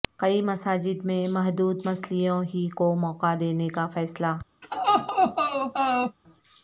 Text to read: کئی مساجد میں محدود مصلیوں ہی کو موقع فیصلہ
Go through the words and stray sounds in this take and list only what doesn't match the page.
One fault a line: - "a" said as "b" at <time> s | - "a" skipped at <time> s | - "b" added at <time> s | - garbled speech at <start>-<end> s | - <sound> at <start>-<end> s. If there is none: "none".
- "دینے کا" added at 3.4 s
- laugh at 4.6-6.2 s